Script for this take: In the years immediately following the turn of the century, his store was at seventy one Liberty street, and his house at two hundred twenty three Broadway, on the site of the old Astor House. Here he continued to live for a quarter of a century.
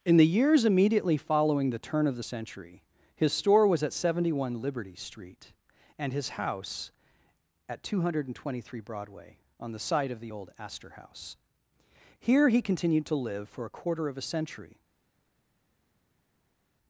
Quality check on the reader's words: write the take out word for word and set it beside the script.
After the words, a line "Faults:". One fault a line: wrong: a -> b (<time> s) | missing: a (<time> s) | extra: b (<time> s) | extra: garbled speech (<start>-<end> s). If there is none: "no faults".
In the years immediately following the turn of the century, his store was at seventy one Liberty street, and his house at two hundred twenty three Broadway, on the site of the old Astor House. Here he continued to live for a quarter of a century.
Faults:
no faults